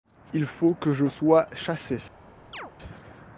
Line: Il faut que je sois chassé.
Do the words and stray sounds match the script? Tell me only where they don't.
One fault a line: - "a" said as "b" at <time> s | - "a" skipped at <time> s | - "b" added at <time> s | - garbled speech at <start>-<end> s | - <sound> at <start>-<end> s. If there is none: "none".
- chirp at 2.5-2.7 s